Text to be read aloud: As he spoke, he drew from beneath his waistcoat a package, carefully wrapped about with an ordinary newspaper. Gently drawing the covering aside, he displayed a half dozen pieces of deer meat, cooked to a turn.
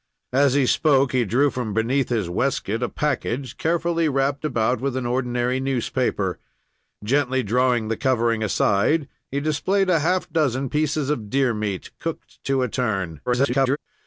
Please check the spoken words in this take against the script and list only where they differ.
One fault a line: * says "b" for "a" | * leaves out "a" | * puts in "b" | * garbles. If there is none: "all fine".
* garbles